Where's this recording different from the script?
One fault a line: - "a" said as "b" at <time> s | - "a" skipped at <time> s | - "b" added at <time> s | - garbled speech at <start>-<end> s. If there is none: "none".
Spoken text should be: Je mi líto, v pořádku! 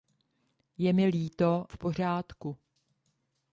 none